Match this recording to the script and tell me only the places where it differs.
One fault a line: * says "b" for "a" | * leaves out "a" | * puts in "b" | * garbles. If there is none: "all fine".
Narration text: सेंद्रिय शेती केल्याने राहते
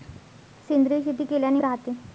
all fine